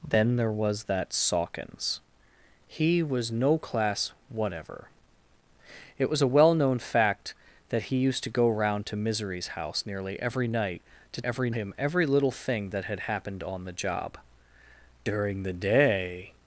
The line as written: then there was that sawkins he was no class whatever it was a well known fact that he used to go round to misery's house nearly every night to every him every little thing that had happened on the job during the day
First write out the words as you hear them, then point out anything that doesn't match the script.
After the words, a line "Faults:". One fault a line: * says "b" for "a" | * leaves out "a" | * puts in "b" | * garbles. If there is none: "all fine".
then there was that sawkins he was no class whatever it was a well known fact that he used to go round to misery's house nearly every night to every him every little thing that had happened on the job during the day
Faults:
all fine